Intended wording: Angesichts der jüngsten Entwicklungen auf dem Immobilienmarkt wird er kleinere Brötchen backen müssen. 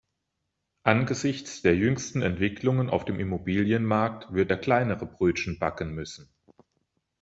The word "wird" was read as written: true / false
true